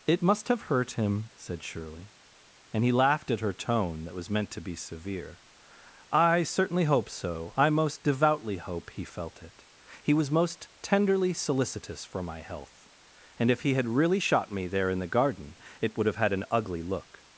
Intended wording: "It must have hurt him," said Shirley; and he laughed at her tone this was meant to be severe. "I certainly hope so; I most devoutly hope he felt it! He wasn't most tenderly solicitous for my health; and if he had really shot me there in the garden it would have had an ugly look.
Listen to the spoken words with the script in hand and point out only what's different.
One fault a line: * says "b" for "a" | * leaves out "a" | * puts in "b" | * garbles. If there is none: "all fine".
* says "that" for "this"
* says "was" for "wasn't"